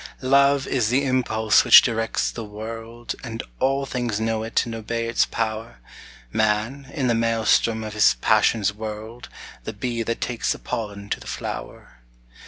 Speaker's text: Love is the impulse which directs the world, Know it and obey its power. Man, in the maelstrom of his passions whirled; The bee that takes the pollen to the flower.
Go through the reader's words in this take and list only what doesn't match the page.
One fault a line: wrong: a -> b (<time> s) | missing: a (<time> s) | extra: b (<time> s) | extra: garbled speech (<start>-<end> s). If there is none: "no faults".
extra: And all things (3.2 s)